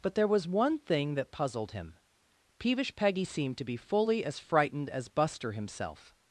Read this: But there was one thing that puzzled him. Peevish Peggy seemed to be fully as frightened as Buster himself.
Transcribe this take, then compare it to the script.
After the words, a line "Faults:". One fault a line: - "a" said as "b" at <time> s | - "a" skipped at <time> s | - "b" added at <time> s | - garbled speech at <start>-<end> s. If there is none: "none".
But there was one thing that puzzled him. Peevish Peggy seemed to be fully as frightened as Buster himself.
Faults:
none